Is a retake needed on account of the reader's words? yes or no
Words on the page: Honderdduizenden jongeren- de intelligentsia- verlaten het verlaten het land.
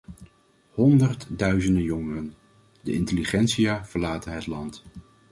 yes